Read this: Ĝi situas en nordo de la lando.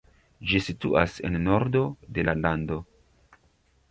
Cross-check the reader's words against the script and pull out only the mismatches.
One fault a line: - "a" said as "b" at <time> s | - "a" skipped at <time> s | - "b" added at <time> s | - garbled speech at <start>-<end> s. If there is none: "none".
none